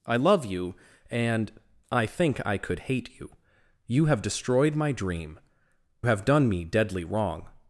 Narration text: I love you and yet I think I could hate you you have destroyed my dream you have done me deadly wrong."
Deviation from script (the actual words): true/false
true